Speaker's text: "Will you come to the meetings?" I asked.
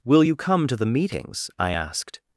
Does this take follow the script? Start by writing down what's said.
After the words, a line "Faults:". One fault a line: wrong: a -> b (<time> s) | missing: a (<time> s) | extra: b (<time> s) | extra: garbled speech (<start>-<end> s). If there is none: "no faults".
"Will you come to the meetings?" I asked.
Faults:
no faults